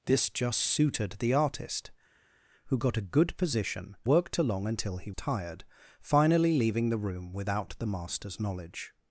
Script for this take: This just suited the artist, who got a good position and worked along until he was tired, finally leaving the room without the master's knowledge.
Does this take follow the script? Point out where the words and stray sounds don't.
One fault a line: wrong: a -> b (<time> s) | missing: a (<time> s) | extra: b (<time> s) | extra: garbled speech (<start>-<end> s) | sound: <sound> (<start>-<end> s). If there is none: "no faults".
missing: and (4.0 s)
missing: was (5.1 s)